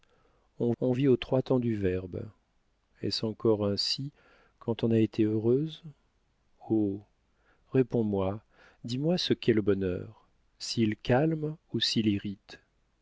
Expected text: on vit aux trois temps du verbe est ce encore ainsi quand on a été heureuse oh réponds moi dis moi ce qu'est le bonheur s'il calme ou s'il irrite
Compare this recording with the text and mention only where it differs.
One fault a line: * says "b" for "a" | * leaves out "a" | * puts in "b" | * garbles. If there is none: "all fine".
* puts in "on"